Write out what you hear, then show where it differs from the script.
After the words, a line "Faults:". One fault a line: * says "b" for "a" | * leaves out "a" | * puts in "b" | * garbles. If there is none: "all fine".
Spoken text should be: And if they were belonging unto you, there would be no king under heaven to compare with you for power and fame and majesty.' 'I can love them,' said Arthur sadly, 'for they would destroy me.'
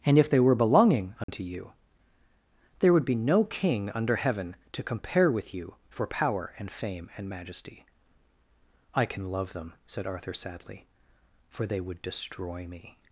And if they were belonging unto you, there would be no king under heaven to compare with you for power and fame and majesty.' 'I can love them,' said Arthur sadly, 'for they would destroy me.'
Faults:
all fine